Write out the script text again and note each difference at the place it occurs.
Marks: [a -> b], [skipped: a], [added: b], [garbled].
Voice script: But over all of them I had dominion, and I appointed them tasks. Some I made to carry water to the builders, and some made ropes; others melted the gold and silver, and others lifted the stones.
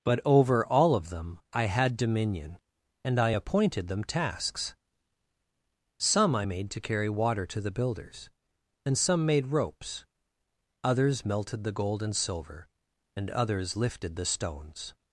But over all of them I had dominion, and I appointed them tasks. Some I made to carry water to the builders, and some made ropes; others melted the gold and silver, and others lifted the stones.